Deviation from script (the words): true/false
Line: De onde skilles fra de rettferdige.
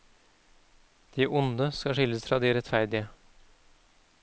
true